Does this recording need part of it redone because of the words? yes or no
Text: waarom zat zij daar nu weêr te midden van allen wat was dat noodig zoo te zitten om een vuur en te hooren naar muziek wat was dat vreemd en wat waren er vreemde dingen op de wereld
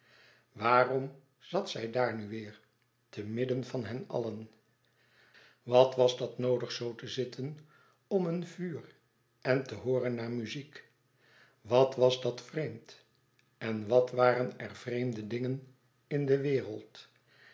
yes